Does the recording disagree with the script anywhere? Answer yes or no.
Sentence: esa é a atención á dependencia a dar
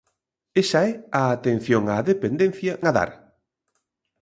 no